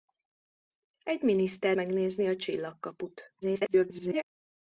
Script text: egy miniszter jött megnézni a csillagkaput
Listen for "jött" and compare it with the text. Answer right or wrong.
wrong